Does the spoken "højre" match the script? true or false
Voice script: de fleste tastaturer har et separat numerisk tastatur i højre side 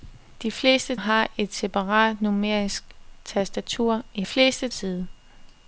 false